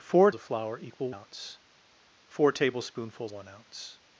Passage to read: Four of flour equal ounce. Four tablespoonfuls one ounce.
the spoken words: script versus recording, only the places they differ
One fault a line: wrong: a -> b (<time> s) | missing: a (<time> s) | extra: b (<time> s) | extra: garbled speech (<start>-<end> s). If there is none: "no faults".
no faults